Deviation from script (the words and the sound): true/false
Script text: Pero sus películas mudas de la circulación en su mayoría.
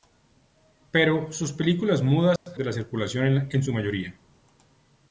true